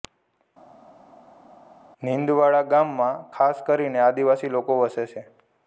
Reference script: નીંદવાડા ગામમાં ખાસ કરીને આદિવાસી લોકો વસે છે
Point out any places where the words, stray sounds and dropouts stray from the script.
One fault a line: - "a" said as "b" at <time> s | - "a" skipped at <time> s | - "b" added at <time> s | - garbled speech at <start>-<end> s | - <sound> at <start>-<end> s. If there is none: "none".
none